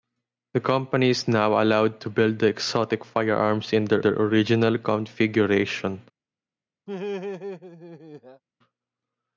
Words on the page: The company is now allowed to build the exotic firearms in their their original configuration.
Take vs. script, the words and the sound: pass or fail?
fail